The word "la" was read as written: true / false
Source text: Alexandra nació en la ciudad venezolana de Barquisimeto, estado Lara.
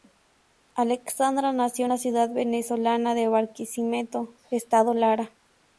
true